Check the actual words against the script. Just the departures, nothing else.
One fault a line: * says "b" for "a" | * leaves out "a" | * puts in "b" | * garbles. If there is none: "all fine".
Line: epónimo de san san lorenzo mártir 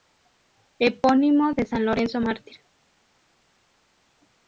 * leaves out "san"